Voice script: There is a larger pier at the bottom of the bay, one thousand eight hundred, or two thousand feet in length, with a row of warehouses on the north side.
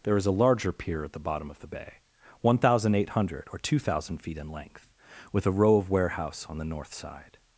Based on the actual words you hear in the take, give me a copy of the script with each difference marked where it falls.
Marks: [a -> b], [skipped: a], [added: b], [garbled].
There is a larger pier at the bottom of the bay, one thousand eight hundred, or two thousand feet in length, with a row of [warehouses -> warehouse] on the north side.